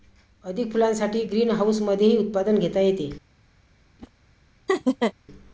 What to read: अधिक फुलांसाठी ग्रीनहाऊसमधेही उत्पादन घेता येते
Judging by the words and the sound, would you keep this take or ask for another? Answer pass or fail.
fail